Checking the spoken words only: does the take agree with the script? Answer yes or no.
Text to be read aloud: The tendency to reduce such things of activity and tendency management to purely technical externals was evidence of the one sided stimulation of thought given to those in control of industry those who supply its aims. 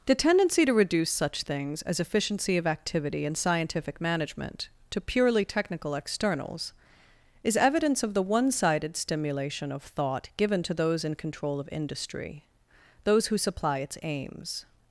no